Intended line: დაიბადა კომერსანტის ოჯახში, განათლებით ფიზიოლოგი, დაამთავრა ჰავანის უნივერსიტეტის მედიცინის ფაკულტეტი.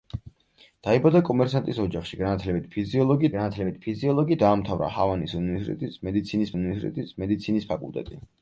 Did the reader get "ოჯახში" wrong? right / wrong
right